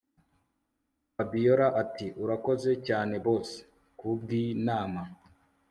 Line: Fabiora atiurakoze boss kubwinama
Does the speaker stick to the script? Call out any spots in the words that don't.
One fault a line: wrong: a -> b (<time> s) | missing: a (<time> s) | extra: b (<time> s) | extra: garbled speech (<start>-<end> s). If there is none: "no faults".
extra: cyane (2.9 s)